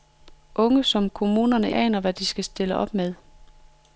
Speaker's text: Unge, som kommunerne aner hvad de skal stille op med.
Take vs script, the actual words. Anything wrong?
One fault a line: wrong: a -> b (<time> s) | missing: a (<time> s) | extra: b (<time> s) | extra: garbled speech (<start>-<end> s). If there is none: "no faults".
no faults